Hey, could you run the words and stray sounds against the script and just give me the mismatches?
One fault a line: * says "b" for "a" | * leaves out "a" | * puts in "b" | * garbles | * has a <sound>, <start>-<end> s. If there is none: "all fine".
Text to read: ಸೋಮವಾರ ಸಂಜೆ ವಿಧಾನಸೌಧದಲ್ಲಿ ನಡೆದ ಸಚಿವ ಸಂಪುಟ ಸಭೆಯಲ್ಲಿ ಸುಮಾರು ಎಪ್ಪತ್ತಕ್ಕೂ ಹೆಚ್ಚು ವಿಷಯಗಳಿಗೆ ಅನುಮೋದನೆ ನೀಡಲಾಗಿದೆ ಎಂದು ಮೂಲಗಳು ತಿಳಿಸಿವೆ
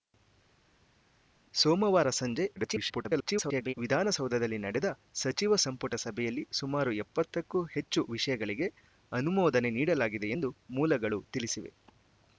* garbles